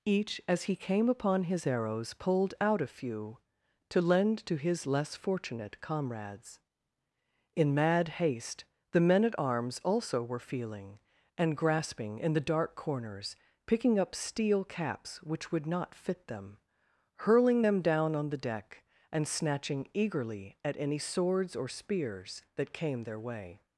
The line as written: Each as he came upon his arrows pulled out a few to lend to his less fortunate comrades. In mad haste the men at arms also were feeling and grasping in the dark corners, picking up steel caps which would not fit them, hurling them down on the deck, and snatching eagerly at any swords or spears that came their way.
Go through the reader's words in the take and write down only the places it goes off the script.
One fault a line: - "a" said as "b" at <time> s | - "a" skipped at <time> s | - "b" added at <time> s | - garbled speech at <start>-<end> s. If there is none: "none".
none